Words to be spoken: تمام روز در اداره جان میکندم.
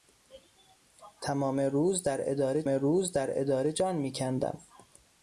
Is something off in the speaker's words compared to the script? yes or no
yes